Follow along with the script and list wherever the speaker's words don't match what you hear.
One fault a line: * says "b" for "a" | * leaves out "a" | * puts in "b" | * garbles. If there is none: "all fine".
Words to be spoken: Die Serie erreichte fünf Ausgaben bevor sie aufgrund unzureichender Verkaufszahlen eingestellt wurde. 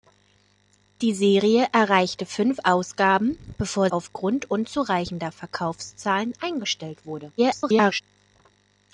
* leaves out "sie"
* garbles